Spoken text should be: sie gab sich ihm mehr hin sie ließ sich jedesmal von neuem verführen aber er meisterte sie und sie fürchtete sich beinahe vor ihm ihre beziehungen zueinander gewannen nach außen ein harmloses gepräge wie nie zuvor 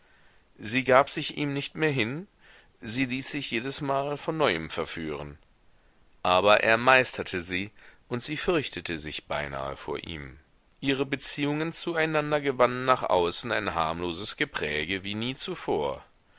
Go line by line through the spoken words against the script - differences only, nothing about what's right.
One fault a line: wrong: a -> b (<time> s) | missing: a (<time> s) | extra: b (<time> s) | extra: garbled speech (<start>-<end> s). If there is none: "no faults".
extra: nicht (1.5 s)